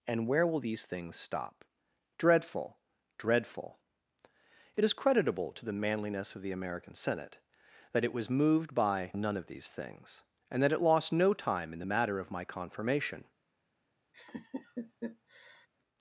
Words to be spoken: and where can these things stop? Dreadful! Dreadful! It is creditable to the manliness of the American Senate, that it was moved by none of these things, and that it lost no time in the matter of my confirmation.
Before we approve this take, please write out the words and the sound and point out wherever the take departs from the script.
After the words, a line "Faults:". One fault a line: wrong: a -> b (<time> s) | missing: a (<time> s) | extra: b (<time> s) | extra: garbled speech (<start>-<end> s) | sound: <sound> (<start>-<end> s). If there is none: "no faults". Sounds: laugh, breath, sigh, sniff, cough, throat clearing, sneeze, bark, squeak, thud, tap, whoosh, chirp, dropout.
and where will these things stop? Dreadful! Dreadful! It is creditable to the manliness of the American Senate, that it was moved by none of these things, and that it lost no time in the matter of my confirmation.
Faults:
wrong: can -> will (0.5 s)
sound: laugh (14.1-15.7 s)